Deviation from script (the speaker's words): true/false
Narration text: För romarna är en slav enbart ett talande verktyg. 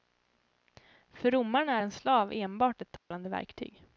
false